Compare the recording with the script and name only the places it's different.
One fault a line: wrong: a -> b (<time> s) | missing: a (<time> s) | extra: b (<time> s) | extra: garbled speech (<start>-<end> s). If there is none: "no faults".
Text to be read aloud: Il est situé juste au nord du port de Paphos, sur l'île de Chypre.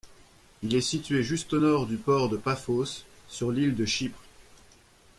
no faults